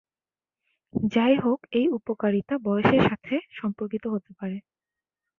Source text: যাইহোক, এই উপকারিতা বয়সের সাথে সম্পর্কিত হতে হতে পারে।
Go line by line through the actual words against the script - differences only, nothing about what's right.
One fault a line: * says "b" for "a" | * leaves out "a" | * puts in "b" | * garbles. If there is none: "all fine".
* leaves out "হতে"